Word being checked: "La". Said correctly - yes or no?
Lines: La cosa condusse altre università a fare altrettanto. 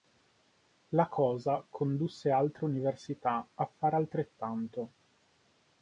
yes